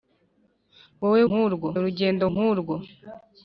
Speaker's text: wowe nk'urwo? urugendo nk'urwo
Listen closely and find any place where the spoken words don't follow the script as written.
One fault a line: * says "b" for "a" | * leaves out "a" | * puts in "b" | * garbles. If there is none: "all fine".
all fine